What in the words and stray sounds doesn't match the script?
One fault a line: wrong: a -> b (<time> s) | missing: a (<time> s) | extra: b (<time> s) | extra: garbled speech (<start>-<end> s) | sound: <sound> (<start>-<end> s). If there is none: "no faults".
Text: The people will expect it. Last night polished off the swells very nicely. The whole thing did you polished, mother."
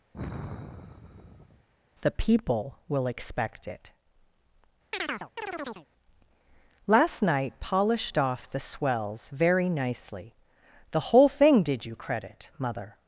sound: sigh (0.1-1.7 s)
sound: chirp (4.9-5.9 s)
wrong: polished -> credit (11.9 s)